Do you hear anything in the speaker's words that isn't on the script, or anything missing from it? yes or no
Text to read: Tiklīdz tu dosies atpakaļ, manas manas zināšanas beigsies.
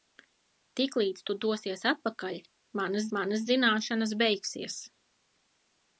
no